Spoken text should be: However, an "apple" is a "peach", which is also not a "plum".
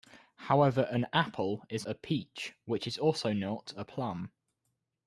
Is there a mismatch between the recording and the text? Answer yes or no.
no